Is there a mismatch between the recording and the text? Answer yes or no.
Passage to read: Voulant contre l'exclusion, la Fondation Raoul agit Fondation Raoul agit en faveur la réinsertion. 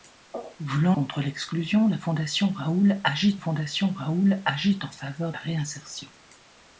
no